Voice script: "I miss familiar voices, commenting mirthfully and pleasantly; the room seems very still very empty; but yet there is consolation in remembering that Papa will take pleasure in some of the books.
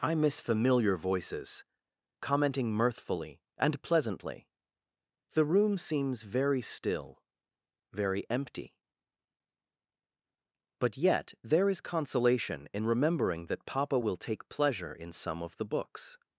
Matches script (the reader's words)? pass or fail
pass